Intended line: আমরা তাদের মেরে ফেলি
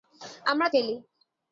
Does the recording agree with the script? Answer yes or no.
no